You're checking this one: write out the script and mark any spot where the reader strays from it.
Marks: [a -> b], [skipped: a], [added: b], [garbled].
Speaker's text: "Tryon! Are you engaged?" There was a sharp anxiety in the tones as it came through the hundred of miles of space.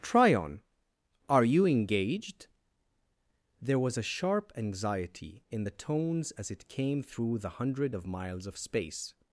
"Tryon! Are you engaged?" There was a sharp anxiety in the tones as it came through the hundred of miles of space.